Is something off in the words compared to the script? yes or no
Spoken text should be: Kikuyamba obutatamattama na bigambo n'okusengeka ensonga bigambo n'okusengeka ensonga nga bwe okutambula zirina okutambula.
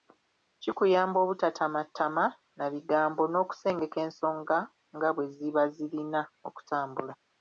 yes